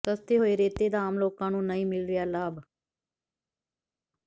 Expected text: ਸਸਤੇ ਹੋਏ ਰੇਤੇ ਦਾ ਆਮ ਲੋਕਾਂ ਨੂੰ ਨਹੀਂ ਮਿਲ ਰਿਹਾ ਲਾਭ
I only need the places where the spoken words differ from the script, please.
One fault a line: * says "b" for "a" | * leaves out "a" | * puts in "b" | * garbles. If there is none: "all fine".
all fine